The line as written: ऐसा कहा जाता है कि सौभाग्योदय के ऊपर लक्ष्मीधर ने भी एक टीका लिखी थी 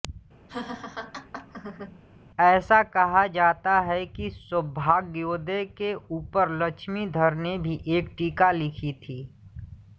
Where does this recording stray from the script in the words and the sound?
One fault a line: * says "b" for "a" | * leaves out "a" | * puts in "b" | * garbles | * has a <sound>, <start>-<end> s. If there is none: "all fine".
* has a laugh, 0.5-2.0 s